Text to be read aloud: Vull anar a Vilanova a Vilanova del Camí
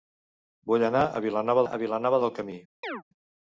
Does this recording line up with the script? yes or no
yes